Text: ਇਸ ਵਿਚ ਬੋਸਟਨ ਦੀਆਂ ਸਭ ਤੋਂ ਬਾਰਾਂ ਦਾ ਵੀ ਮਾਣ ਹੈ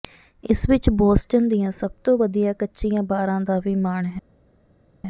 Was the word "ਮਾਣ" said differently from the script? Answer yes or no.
no